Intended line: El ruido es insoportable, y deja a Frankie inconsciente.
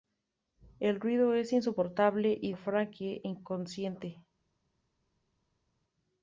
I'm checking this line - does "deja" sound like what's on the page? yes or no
no